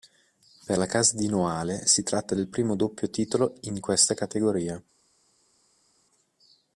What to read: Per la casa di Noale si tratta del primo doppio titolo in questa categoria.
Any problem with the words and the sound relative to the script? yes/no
no